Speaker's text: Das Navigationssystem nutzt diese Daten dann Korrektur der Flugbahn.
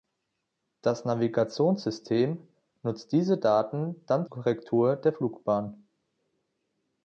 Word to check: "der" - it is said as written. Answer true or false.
true